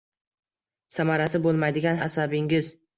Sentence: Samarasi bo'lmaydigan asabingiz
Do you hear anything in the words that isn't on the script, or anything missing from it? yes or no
no